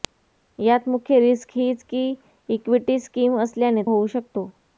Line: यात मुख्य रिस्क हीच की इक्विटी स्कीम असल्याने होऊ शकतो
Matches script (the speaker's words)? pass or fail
pass